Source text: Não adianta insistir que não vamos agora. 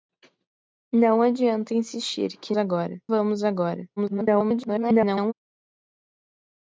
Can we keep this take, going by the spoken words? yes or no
no